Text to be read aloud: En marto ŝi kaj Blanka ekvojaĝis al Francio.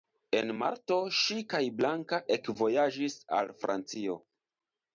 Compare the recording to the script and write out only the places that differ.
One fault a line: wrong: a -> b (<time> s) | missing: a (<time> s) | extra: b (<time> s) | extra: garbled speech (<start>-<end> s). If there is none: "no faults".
no faults